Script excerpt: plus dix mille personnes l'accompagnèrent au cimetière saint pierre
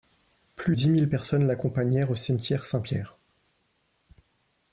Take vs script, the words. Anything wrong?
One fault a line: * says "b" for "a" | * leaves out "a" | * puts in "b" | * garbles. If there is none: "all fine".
all fine